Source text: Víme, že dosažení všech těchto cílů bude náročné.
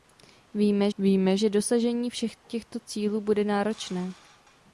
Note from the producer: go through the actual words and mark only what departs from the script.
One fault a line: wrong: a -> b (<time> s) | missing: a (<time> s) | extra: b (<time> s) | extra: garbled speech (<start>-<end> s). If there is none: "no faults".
extra: víme (1.0 s)